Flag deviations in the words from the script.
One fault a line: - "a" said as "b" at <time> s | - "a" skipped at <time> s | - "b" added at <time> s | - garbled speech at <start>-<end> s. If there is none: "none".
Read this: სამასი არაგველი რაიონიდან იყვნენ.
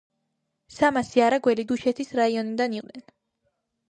- "დუშეთის" added at 1.7 s